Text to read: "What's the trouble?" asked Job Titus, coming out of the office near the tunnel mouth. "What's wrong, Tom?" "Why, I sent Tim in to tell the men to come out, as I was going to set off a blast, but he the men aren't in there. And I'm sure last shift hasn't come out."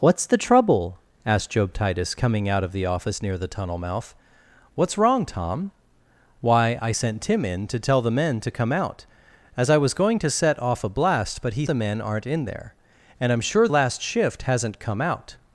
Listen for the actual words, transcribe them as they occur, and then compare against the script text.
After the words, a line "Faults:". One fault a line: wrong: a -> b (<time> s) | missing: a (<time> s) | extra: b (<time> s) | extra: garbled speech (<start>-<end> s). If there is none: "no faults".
"What's the trouble?" asked Job Titus, coming out of the office near the tunnel mouth. "What's wrong, Tom?" "Why, I sent Tim in to tell the men to come out, as I was going to set off a blast, but he the men aren't in there. And I'm sure last shift hasn't come out."
Faults:
no faults